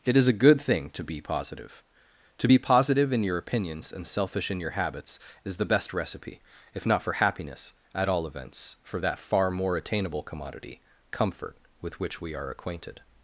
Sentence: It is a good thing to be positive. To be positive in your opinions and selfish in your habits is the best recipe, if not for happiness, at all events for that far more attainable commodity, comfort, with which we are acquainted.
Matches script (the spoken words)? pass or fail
pass